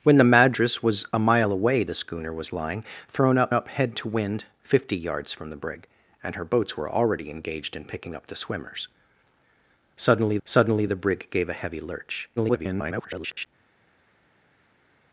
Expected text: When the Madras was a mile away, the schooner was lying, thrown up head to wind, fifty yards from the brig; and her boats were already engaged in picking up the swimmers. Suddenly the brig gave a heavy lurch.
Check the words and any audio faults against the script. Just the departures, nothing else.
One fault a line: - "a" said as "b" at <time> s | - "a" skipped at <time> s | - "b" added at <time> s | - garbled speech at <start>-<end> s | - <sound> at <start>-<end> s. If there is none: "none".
- "up" added at 3.5 s
- "suddenly" added at 10.5 s
- garbled speech at 12.4-13.5 s